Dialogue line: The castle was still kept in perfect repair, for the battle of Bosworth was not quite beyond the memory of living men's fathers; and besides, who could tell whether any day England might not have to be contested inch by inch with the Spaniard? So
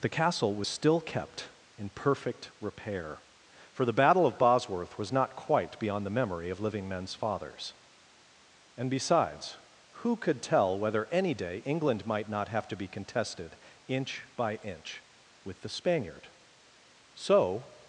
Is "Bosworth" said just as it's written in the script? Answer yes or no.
yes